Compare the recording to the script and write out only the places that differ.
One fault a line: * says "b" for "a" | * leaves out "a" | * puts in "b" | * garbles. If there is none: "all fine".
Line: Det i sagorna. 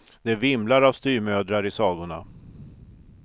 * puts in "vimlar av styvmödrar"